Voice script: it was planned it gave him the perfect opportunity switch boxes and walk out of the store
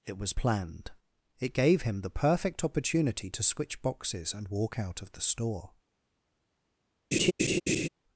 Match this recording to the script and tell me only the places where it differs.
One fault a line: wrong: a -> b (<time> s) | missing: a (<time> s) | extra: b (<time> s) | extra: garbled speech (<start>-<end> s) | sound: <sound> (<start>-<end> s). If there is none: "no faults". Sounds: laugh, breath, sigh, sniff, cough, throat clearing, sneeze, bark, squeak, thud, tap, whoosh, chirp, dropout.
extra: to (3.3 s)
sound: laugh (7.1-7.9 s)